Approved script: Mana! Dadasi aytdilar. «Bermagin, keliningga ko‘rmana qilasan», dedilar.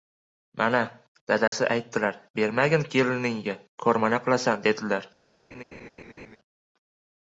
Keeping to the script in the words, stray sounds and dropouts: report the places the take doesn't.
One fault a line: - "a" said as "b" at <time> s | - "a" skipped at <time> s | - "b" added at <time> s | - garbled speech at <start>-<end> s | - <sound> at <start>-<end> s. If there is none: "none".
- dropout at 1.5-1.5 s
- laugh at 5.5-6.4 s